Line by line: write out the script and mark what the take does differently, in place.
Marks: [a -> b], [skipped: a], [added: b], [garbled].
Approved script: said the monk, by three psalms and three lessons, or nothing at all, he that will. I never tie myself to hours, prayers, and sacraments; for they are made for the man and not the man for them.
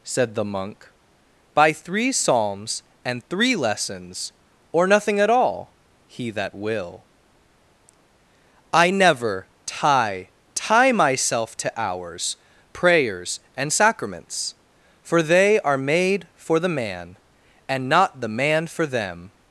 said the monk, by three psalms and three lessons, or nothing at all, he that will. I never tie [added: tie] myself to hours, prayers, and sacraments; for they are made for the man and not the man for them.